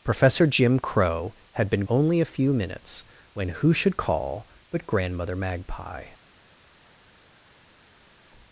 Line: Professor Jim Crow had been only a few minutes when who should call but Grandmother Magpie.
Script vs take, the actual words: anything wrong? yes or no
no